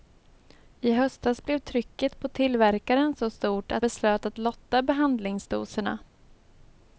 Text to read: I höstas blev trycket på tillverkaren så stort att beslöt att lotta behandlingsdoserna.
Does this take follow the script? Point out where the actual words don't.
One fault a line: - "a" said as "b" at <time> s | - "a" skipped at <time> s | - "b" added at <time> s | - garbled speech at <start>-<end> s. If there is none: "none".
none